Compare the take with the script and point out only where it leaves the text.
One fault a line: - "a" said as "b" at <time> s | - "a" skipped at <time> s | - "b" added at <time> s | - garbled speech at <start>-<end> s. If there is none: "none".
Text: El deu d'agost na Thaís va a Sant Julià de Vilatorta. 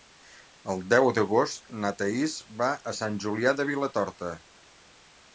none